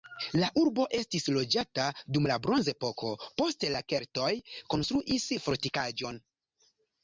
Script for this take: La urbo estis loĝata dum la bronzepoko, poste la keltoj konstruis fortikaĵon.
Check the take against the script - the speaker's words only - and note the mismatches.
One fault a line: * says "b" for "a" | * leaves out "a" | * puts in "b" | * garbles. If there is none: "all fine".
all fine